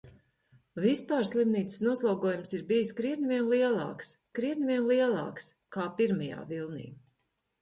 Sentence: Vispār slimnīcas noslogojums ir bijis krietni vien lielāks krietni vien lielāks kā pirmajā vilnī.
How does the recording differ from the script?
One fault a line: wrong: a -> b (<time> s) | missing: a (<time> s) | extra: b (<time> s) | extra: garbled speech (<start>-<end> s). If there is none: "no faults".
no faults